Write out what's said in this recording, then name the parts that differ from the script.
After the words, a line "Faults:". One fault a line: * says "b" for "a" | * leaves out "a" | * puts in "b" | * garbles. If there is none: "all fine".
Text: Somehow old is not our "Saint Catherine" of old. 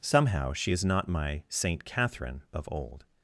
Somehow she is not my "Saint Catherine" of old.
Faults:
* says "she" for "old"
* says "my" for "our"